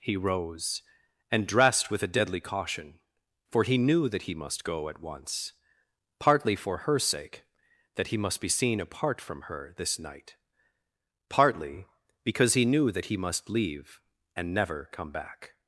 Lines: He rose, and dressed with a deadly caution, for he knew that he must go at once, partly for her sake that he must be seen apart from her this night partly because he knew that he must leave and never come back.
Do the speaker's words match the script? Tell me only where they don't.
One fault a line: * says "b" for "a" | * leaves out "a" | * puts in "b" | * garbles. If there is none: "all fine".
all fine